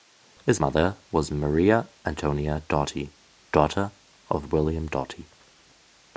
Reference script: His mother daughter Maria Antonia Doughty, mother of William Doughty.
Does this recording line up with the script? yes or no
no